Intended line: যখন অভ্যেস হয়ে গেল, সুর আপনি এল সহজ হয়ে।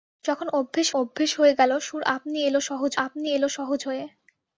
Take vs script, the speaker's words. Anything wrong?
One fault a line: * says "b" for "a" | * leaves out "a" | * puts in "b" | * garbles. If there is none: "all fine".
* puts in "অভ্যেস"
* puts in "আপনি এল সহজ"